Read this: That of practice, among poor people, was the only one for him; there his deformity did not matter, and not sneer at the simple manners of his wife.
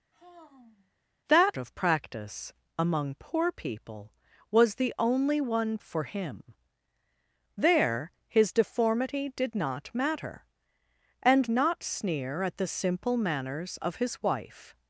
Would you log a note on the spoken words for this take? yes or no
no